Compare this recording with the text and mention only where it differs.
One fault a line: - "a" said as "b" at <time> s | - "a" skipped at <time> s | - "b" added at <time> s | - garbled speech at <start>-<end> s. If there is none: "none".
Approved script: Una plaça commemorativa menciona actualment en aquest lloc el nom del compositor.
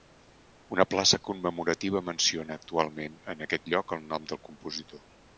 none